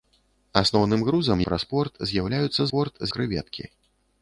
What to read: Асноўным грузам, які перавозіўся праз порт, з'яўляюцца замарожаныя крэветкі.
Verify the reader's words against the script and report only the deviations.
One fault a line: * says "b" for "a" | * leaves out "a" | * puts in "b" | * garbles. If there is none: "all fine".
* leaves out "які перавозіўся"
* says "порт" for "замарожаныя"